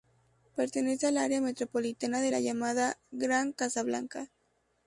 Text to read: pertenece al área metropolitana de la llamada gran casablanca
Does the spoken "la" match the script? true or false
true